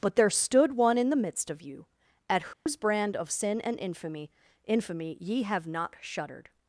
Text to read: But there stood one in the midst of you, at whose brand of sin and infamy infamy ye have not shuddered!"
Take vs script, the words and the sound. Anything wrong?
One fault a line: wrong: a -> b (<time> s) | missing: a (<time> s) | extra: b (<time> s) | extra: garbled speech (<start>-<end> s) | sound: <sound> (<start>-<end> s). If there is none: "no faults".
sound: dropout (2.5-2.7 s)